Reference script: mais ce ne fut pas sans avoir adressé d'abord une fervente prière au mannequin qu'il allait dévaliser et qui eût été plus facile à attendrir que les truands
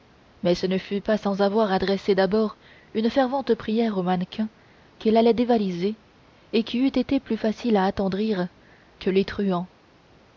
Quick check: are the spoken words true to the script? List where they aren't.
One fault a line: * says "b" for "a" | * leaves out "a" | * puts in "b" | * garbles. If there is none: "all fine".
all fine